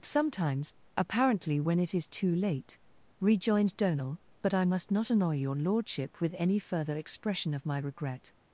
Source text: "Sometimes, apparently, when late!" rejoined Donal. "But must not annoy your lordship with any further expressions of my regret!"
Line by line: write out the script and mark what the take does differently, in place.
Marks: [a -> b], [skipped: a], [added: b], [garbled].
"Sometimes, apparently, when [added: it is too] late!" rejoined Donal. "But [added: I] must not annoy your lordship with any further [expressions -> expression] of my regret!"